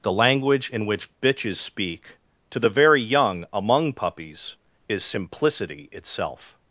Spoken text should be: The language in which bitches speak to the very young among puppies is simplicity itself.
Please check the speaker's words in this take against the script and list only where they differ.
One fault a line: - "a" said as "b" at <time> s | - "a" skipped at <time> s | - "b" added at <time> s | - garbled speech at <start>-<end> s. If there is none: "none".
none